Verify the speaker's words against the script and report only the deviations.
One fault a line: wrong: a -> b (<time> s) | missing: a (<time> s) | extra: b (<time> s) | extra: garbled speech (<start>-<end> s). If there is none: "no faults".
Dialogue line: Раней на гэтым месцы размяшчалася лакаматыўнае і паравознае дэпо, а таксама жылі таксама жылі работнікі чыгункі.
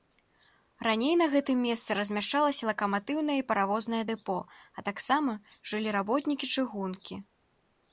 missing: таксама жылі (5.9 s)